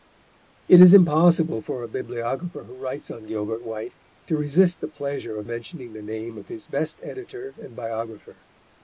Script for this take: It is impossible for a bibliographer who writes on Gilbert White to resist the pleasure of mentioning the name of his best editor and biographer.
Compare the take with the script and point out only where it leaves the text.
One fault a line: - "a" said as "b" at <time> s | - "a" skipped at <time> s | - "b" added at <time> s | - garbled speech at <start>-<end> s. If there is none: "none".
none